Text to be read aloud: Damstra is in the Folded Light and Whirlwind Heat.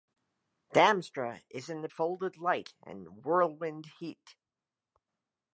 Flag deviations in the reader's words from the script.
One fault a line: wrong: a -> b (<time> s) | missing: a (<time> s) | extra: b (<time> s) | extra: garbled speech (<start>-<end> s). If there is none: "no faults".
no faults